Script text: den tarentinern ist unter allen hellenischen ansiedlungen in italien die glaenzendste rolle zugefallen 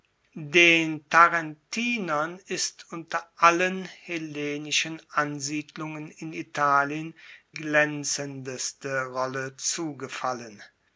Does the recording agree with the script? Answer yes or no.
no